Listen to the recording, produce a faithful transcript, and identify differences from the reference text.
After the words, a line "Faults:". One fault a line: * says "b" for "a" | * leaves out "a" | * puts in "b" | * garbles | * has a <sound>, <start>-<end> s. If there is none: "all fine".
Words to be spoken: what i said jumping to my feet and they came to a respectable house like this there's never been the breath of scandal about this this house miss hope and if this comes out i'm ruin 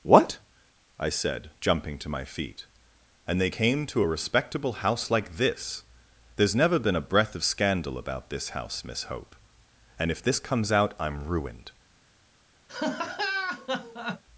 what i said jumping to my feet and they came to a respectable house like this there's never been a breath of scandal about this house miss hope and if this comes out i'm ruined
Faults:
* says "a" for "the"
* leaves out "this"
* says "ruined" for "ruin"
* has a laugh, 12.7-14.2 s